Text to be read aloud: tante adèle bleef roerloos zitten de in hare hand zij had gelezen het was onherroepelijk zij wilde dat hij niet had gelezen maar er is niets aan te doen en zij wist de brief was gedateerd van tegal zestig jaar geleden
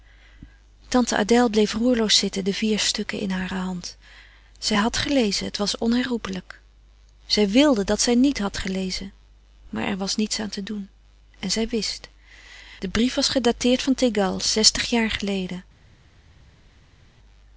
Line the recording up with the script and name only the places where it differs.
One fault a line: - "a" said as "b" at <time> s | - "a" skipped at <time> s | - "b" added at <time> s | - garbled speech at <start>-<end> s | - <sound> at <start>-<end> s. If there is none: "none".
- "vier stukken" added at 2.5 s
- "hij" said as "zij" at 8.0 s
- "is" said as "was" at 10.0 s